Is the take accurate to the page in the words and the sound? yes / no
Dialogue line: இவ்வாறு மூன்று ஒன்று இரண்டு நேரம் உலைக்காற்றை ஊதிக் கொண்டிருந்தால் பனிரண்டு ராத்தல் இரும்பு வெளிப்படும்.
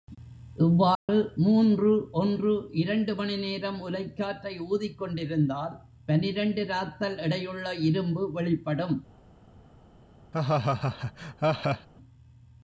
no